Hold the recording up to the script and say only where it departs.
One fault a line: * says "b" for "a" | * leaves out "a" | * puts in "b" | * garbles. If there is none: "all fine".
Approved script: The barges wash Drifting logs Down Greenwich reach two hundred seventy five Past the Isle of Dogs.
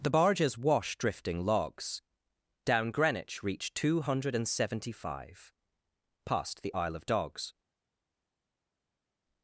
all fine